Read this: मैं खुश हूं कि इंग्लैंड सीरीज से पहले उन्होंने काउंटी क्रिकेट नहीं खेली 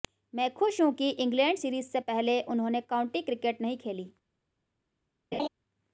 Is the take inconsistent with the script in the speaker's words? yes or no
no